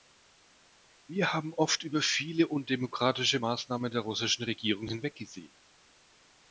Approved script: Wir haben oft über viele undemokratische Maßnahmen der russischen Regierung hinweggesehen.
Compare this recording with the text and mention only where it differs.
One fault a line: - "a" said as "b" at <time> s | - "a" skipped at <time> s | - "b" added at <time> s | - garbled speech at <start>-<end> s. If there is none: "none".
none